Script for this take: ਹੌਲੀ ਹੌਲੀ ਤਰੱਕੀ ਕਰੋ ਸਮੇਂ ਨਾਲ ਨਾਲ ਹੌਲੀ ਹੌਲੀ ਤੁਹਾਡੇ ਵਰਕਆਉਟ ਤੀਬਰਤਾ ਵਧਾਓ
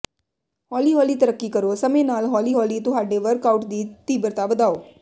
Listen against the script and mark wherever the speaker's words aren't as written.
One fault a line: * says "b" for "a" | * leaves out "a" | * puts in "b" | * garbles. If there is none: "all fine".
* leaves out "ਨਾਲ"
* puts in "ਦੀ"